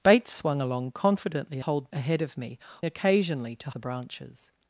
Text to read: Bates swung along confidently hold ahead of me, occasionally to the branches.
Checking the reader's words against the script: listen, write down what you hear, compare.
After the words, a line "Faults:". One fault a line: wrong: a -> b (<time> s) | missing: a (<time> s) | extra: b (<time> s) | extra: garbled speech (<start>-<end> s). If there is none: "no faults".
Bates swung along confidently hold ahead of me, occasionally to the branches.
Faults:
no faults